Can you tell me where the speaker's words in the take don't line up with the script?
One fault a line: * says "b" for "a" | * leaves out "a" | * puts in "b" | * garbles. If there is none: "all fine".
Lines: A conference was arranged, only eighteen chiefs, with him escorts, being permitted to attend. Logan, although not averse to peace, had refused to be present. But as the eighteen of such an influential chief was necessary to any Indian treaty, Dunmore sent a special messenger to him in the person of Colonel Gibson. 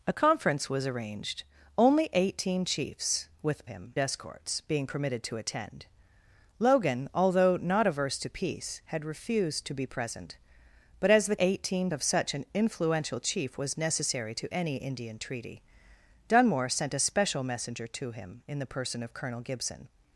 all fine